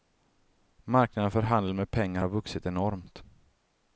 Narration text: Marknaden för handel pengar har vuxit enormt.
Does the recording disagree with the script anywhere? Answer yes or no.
yes